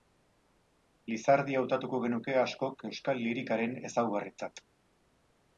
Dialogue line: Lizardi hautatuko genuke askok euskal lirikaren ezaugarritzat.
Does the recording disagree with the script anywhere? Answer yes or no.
no